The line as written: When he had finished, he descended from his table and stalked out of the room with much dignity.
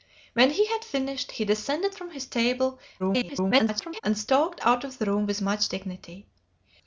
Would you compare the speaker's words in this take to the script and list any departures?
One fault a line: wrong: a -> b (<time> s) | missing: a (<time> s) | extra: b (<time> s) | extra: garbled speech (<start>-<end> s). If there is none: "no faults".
extra: garbled speech (3.0-4.0 s)